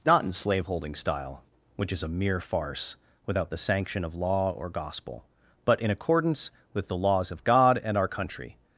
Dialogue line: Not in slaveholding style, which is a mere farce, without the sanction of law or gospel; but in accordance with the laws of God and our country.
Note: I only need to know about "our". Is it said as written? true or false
true